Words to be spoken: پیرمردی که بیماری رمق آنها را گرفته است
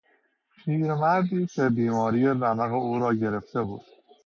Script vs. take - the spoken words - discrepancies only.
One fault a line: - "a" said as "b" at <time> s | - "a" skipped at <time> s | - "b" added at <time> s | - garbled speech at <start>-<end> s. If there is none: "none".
- "آنها" said as "او" at 2.7 s
- "است" said as "بود" at 3.6 s